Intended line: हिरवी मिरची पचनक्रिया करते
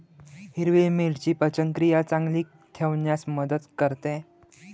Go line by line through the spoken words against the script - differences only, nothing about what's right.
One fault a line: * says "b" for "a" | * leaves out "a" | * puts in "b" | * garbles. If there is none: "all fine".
* puts in "चांगली ठेवण्यास मदत"